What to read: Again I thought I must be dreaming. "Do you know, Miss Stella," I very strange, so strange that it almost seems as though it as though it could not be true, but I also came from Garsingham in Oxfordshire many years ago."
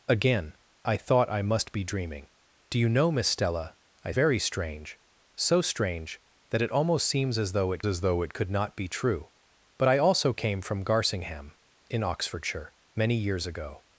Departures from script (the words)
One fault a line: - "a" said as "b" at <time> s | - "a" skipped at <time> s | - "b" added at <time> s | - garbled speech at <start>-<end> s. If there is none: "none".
none